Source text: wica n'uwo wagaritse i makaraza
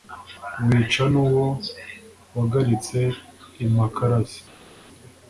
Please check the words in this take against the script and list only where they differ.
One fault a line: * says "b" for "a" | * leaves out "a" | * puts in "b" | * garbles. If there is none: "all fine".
all fine